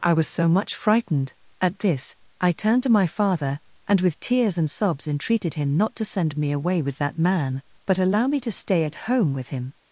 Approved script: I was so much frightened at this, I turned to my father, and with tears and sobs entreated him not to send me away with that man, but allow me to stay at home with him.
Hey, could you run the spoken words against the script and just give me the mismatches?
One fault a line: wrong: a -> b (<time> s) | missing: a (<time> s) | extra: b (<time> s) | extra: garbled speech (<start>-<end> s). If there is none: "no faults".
no faults